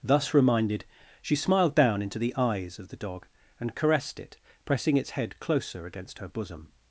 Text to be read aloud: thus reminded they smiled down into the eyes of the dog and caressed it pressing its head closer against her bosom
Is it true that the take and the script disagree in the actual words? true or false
true